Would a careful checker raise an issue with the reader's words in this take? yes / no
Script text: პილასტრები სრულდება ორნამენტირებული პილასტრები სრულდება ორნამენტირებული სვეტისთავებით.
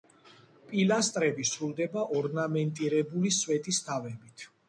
yes